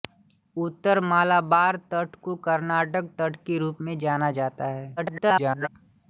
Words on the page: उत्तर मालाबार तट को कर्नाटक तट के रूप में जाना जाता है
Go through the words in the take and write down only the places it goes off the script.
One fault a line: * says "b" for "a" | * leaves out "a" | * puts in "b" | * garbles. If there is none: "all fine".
* garbles